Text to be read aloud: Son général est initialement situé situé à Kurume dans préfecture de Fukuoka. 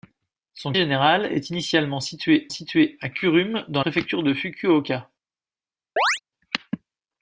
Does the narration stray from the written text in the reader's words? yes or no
no